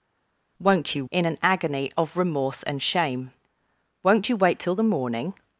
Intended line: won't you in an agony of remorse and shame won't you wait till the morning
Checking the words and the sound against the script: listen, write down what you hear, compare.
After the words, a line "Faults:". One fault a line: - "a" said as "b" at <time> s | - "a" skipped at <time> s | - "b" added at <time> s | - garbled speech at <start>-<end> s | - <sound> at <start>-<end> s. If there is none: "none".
won't you in an agony of remorse and shame won't you wait till the morning
Faults:
none